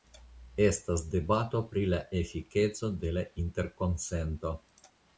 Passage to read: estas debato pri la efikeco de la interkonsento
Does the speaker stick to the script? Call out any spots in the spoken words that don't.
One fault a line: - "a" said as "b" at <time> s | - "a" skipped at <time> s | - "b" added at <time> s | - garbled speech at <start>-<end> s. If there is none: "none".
none